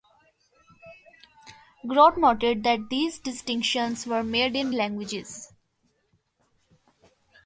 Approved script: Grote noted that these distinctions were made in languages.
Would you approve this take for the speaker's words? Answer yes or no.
yes